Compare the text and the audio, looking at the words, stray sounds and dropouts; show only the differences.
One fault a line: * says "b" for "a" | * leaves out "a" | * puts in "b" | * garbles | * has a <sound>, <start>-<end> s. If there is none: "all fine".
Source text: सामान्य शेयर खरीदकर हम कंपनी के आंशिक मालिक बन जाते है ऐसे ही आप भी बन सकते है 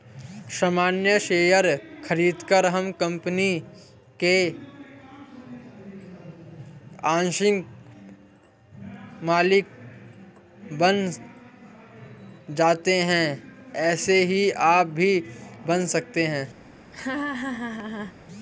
* has a laugh, 16.9-18.2 s